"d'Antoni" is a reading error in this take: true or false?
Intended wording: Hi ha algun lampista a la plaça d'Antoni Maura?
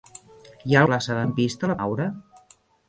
true